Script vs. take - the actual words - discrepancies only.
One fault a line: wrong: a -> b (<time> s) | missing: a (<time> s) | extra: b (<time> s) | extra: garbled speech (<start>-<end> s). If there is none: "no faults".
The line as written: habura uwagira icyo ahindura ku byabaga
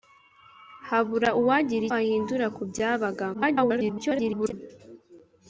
missing: icyo (1.9 s)
extra: garbled speech (3.3-4.5 s)